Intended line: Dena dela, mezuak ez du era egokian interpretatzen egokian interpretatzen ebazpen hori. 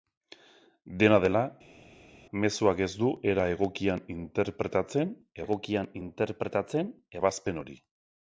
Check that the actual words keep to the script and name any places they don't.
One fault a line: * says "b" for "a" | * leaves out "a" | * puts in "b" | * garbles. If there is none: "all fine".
all fine